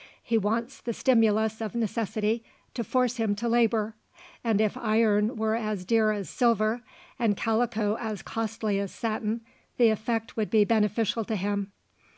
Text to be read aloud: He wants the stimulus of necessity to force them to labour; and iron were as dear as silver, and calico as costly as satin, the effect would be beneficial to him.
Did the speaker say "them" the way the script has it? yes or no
no